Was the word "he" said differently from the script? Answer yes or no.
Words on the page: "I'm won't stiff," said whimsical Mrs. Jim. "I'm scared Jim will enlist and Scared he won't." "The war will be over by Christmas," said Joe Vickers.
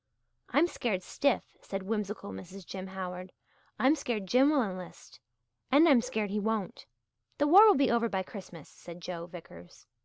no